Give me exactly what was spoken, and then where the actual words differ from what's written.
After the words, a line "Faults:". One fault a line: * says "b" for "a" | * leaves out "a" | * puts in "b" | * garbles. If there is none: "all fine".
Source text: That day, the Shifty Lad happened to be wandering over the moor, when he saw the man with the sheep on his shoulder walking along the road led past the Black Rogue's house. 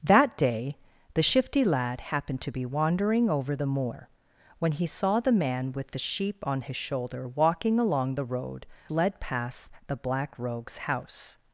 That day, the Shifty Lad happened to be wandering over the moor, when he saw the man with the sheep on his shoulder walking along the road led past the Black Rogue's house.
Faults:
all fine